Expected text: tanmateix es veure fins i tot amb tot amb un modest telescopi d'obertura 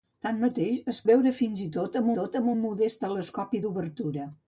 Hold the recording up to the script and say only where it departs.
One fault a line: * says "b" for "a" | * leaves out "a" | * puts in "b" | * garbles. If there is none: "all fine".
all fine